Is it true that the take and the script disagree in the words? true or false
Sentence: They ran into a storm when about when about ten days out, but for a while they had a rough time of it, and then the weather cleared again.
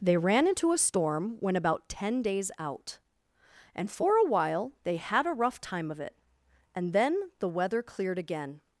true